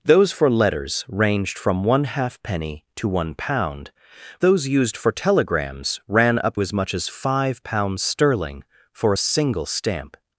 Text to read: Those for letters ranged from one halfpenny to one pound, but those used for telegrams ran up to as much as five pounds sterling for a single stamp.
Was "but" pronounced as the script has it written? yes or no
no